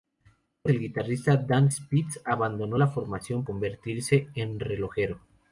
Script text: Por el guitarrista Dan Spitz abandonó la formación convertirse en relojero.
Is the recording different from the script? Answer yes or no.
no